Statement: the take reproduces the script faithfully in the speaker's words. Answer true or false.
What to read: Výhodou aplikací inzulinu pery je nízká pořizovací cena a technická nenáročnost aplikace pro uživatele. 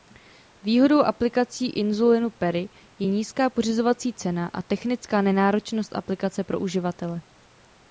true